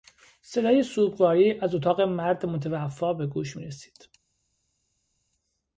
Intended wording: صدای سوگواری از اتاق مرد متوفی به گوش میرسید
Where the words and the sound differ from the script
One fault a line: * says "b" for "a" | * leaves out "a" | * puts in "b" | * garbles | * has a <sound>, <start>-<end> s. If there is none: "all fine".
all fine